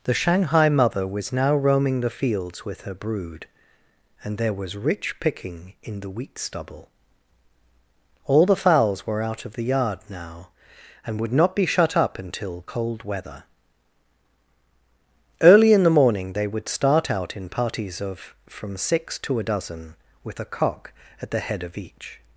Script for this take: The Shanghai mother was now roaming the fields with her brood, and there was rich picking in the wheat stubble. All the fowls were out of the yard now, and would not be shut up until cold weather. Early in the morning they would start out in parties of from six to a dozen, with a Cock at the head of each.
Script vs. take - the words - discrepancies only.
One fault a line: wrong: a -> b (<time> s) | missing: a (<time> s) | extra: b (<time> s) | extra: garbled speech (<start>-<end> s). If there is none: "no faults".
no faults